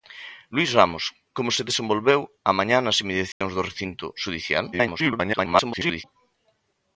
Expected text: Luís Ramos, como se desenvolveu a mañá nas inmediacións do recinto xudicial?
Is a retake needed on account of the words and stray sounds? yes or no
yes